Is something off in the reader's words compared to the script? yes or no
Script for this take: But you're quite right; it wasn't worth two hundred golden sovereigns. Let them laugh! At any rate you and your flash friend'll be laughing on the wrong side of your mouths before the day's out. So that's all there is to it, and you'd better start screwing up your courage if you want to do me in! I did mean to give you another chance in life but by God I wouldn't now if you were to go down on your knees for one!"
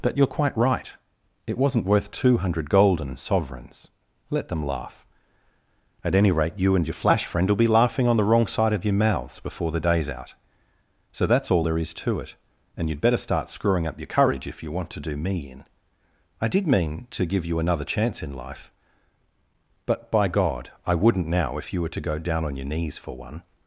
no